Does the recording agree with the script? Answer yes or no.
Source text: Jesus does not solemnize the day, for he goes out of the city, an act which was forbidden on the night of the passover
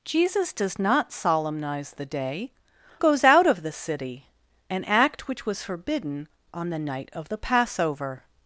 no